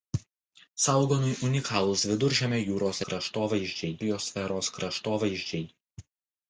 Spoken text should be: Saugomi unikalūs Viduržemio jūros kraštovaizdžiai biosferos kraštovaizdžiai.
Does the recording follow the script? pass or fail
pass